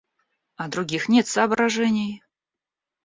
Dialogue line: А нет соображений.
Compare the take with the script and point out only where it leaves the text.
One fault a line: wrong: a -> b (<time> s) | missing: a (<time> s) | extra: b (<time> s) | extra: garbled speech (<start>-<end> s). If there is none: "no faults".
extra: других (0.7 s)